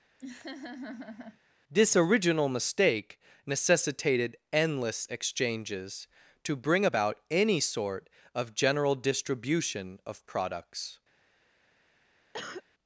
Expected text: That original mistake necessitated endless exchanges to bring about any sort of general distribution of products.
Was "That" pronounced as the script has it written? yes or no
no